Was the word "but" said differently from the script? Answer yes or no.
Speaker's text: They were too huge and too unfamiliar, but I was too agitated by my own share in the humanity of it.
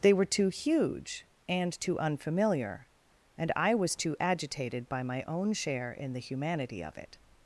yes